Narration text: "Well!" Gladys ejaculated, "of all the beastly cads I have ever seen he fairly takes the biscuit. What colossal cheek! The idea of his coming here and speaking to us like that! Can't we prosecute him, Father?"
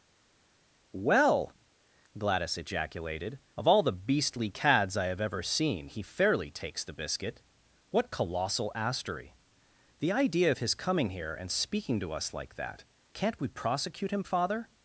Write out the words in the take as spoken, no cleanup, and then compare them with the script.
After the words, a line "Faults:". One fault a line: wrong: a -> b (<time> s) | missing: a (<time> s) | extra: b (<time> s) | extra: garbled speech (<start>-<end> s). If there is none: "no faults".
"Well!" Gladys ejaculated, "of all the beastly cads I have ever seen he fairly takes the biscuit. What colossal astery! The idea of his coming here and speaking to us like that! Can't we prosecute him, Father?"
Faults:
wrong: cheek -> astery (8.8 s)